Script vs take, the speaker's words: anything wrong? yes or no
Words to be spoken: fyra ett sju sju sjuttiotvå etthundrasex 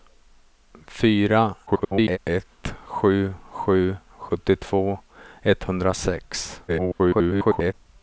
yes